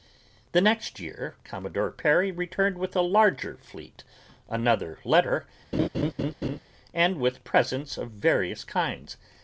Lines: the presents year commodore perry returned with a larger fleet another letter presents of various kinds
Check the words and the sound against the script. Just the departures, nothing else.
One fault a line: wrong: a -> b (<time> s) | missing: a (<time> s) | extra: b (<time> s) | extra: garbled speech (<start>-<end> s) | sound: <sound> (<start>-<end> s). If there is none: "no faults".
wrong: presents -> next (0.6 s)
sound: laugh (5.7-6.6 s)
extra: and with (6.9 s)